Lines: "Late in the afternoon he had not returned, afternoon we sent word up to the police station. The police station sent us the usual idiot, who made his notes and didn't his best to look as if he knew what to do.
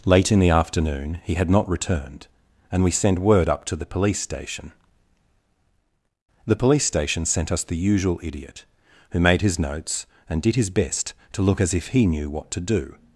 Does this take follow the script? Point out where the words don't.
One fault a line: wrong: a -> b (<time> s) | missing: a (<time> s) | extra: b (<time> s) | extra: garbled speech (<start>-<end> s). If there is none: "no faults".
wrong: afternoon -> and (2.7 s)
wrong: didn't -> did (10.4 s)